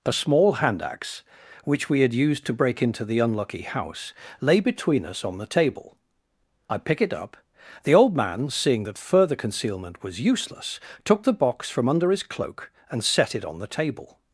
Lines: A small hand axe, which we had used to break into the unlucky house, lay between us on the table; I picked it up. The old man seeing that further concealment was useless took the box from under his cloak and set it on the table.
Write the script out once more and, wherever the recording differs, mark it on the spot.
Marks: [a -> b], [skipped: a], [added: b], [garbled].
A small hand axe, which we had used to break into the unlucky house, lay between us on the table; I [picked -> pick] it up. The old man seeing that further concealment was useless took the box from under his cloak and set it on the table.